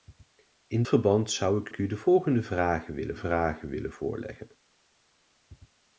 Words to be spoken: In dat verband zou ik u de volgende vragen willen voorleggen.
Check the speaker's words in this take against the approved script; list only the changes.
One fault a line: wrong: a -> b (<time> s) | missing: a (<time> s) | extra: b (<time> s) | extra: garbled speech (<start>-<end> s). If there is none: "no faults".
missing: dat (0.8 s)
extra: ik (1.7 s)
extra: vragen willen (3.1 s)